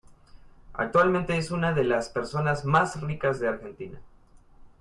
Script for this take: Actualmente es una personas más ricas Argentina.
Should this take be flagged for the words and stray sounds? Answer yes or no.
yes